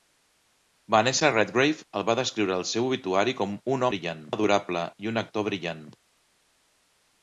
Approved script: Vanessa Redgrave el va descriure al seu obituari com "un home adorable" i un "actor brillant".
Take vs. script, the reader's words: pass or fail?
fail